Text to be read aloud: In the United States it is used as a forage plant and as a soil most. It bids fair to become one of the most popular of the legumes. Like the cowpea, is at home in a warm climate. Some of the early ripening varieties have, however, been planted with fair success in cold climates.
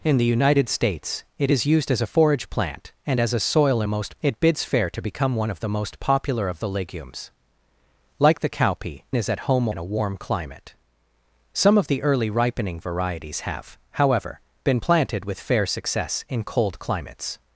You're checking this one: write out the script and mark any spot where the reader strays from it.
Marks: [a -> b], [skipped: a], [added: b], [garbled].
In the United States it is used as a forage plant and as a soil most. It bids fair to become one of the most popular of the legumes. Like the cowpea, is at home in a warm climate. Some of the early ripening varieties have, however, been planted with fair success in cold climates.